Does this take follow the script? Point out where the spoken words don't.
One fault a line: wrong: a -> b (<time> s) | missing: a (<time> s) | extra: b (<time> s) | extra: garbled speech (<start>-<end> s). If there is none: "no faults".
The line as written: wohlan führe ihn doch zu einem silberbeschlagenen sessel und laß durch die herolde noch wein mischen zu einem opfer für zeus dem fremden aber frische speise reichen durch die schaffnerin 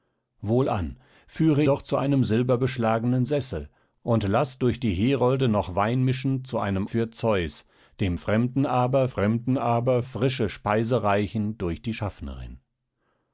missing: ihn (1.6 s)
missing: opfer (6.8 s)
extra: fremden aber (9.1 s)